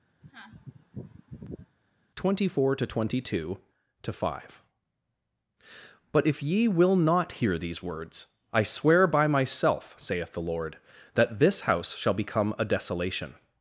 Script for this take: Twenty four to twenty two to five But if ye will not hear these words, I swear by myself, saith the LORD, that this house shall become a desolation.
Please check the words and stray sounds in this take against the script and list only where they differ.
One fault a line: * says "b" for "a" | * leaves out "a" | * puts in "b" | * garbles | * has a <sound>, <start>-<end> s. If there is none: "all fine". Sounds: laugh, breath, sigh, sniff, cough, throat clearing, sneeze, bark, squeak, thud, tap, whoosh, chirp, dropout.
* has a sneeze, 0.2-1.8 s